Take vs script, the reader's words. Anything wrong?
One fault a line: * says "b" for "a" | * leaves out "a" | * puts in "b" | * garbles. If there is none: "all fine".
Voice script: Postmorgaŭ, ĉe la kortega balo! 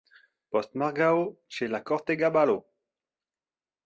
all fine